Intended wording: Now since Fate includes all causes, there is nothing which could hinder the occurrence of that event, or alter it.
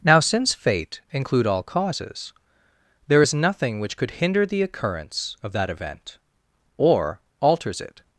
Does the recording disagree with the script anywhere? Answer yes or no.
yes